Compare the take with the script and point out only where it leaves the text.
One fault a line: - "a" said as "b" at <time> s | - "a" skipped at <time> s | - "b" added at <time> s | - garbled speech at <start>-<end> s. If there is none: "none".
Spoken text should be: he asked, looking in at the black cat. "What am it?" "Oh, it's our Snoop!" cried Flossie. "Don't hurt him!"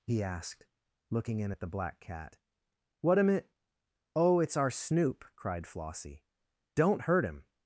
none